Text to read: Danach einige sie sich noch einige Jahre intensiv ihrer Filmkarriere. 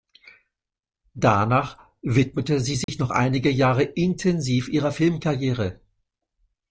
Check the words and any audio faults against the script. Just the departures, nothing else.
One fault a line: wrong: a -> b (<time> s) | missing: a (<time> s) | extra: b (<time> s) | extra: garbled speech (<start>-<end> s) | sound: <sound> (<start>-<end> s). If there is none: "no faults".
wrong: einige -> widmete (2.0 s)
sound: dropout (2.8-2.9 s)